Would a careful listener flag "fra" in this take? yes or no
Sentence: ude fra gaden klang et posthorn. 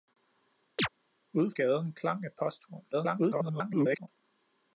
yes